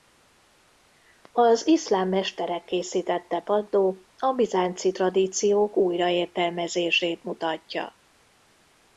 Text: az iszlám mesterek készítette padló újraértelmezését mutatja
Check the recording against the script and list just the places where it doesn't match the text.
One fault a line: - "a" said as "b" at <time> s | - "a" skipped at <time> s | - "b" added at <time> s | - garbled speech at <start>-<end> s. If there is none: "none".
- "a bizánci tradíciók" added at 4.2 s